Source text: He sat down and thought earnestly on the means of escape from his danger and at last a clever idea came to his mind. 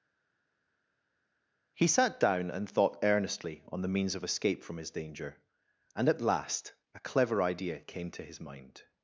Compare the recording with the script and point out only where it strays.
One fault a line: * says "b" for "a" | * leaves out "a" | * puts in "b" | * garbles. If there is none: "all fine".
all fine